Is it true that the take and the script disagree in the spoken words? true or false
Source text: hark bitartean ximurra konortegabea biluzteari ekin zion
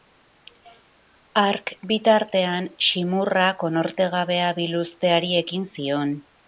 false